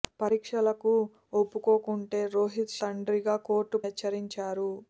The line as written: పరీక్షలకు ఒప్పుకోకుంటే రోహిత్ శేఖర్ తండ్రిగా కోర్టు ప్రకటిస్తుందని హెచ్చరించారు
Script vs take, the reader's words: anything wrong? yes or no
yes